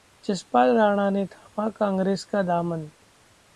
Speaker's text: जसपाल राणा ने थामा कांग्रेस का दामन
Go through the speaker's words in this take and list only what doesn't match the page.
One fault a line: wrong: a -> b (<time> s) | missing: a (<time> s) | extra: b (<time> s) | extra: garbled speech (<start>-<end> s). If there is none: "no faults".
no faults